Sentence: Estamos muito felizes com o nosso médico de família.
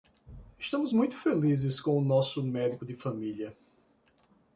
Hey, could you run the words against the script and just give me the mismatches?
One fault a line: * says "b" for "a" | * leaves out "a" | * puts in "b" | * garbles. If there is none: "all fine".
all fine